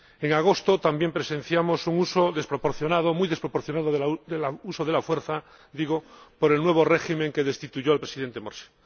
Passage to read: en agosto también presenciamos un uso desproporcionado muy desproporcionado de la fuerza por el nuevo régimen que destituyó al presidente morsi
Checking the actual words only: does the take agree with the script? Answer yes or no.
yes